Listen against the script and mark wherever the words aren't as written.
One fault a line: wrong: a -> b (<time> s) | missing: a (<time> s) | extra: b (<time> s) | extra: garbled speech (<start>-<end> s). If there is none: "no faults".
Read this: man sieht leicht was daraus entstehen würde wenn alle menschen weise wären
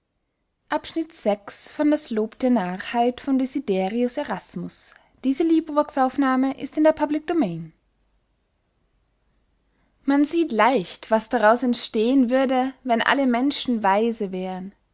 no faults